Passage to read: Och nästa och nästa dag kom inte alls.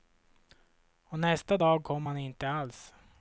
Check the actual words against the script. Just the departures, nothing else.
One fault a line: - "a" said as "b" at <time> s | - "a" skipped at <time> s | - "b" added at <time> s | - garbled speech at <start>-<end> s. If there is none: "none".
- "och nästa" skipped at 1.6 s
- "han" added at 2.1 s